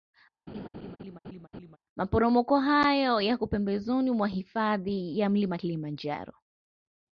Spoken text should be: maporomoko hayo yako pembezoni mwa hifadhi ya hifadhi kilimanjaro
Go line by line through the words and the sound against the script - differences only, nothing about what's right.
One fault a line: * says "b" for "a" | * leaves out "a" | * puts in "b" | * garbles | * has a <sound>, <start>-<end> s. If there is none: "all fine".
* has a laugh, 0.5-1.8 s
* says "mlima" for "hifadhi"